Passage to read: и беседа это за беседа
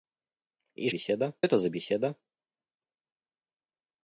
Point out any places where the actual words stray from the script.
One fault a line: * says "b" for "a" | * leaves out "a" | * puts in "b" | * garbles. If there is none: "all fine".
all fine